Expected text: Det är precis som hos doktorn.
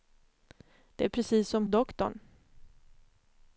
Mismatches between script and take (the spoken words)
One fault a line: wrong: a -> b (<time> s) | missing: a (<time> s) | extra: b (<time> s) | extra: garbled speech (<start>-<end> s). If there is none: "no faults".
missing: hos (1.7 s)